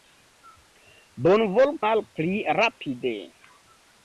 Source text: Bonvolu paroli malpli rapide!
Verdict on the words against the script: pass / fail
fail